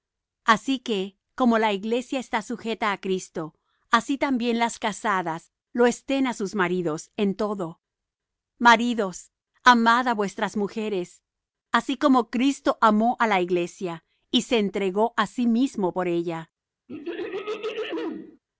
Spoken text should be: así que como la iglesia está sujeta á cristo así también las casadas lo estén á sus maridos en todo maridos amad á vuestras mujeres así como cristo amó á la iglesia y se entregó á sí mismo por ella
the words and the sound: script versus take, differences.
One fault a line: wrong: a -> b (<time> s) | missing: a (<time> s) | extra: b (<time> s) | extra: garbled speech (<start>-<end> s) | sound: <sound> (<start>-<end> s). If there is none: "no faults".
sound: throat clearing (16.9-18.4 s)